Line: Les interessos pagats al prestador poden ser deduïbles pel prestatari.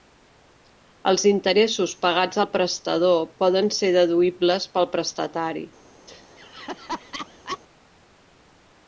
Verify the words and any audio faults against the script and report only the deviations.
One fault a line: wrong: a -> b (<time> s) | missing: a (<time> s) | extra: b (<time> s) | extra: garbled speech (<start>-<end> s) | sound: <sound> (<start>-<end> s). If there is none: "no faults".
wrong: Les -> Els (1.1 s)
sound: laugh (6.1-7.6 s)